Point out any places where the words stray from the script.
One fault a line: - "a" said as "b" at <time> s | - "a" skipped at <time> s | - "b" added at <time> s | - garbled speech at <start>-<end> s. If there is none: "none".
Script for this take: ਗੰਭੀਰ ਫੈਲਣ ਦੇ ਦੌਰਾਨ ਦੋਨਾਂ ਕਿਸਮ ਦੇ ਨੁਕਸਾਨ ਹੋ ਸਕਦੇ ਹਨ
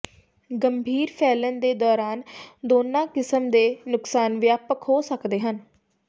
- "ਵਿਆਪਕ" added at 4.4 s